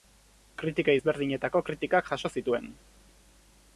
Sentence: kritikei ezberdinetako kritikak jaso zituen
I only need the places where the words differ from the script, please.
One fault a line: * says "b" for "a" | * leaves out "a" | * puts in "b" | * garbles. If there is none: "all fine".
all fine